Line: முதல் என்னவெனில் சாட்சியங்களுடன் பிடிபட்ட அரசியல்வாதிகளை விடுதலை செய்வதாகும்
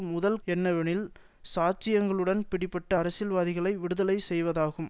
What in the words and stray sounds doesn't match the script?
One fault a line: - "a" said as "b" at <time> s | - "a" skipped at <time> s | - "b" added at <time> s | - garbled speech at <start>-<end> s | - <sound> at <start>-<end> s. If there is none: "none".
none